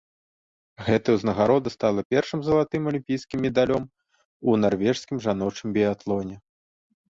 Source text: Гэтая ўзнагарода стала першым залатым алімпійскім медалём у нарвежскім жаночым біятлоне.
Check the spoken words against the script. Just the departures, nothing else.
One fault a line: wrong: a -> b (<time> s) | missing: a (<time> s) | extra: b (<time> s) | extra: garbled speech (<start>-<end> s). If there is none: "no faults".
no faults